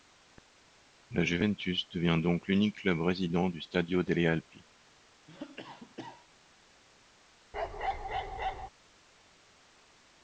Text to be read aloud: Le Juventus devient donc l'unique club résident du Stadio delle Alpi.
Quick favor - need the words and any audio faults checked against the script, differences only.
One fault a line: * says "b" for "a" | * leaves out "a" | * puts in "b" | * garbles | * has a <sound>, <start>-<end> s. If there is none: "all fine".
* says "La" for "Le"
* has a cough, 5.3-6.3 s
* has a bark, 7.5-8.7 s